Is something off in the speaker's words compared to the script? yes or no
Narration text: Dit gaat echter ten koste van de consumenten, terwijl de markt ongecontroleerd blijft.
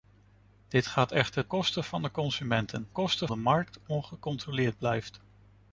yes